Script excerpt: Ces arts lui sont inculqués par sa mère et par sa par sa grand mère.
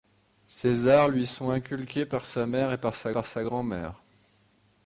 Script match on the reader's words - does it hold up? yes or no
yes